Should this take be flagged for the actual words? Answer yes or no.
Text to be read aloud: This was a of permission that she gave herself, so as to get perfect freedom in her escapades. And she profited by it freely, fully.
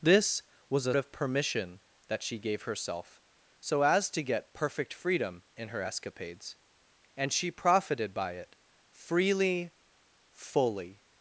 no